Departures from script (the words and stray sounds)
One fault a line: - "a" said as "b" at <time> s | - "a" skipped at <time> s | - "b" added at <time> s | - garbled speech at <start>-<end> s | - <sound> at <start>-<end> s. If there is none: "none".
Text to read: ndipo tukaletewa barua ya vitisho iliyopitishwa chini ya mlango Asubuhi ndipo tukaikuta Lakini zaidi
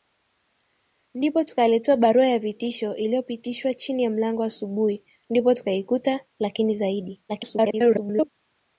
- garbled speech at 7.3-8.3 s